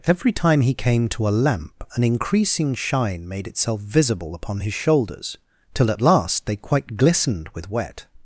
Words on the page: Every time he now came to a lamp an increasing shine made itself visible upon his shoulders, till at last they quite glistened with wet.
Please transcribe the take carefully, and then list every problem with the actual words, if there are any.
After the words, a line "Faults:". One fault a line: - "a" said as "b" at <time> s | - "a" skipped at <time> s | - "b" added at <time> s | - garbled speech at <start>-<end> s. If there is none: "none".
Every time he came to a lamp an increasing shine made itself visible upon his shoulders, till at last they quite glistened with wet.
Faults:
- "now" skipped at 0.7 s